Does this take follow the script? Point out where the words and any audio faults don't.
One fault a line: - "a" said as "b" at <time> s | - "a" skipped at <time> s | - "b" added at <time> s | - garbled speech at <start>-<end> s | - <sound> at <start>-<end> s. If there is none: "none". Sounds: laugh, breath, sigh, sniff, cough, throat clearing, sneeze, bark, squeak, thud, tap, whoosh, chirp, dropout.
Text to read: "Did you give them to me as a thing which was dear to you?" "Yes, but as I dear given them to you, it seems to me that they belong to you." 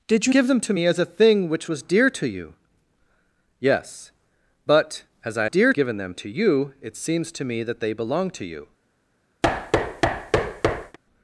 - thud at 9.4-11.0 s